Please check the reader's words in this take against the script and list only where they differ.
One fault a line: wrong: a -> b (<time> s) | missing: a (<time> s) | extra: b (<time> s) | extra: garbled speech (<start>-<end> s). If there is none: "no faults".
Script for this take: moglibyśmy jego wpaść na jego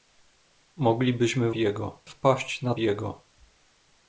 no faults